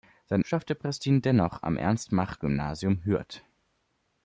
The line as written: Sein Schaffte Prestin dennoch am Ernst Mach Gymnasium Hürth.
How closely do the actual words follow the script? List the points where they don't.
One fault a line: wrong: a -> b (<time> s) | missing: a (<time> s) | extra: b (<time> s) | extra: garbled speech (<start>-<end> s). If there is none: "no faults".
no faults